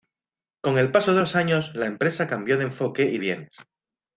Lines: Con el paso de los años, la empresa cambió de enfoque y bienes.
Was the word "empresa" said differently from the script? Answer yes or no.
no